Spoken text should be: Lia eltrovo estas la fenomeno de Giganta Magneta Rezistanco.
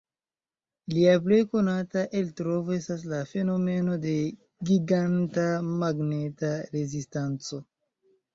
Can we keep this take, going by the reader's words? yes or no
no